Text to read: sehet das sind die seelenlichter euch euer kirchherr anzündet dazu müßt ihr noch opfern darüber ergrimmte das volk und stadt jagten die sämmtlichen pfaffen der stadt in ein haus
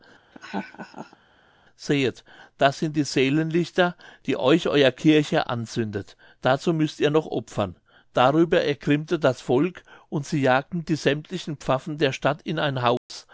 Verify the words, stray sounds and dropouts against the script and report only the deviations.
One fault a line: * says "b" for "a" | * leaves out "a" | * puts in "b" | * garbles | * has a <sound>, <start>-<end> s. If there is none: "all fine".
* has a laugh, 0.3-1.2 s
* puts in "die"
* says "sie" for "stadt"
* has a dropout, 13.0-13.1 s